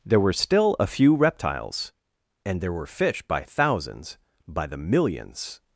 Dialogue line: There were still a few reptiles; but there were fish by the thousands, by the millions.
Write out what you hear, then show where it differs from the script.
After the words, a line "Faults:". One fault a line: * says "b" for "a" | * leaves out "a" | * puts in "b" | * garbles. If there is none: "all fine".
There were still a few reptiles; and there were fish by thousands, by the millions.
Faults:
* says "and" for "but"
* leaves out "the"